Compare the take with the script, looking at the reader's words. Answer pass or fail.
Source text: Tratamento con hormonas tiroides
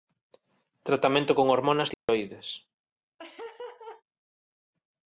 pass